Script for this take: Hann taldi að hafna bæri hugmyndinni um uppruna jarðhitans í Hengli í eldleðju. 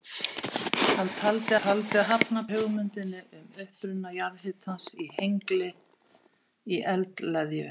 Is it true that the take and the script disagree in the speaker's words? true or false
true